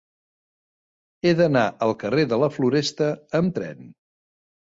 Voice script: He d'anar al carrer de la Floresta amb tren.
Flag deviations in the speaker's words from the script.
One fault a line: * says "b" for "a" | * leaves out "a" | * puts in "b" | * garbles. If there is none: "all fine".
all fine